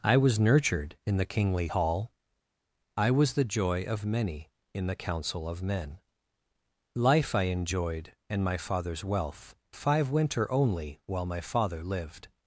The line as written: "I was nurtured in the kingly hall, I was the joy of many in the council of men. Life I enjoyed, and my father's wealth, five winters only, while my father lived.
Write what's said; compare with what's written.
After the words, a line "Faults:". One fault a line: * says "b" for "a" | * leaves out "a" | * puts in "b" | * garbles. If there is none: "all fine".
"I was nurtured in the kingly hall, I was the joy of many in the council of men. Life I enjoyed, and my father's wealth, five winter only, while my father lived.
Faults:
* says "winter" for "winters"